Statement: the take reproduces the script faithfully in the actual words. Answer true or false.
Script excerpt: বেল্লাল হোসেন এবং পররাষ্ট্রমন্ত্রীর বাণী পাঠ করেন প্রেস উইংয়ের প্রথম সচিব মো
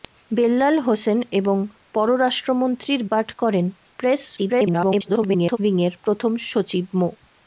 false